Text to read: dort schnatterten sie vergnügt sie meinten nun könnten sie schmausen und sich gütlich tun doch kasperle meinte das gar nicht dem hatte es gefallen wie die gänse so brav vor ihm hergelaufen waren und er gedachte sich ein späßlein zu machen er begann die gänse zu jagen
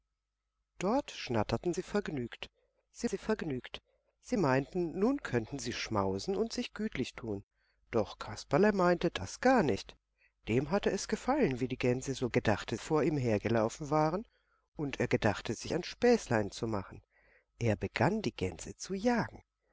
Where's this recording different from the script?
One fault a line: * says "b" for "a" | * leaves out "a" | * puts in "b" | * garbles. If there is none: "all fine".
* puts in "sie vergnügt sie"
* says "gedachte" for "brav"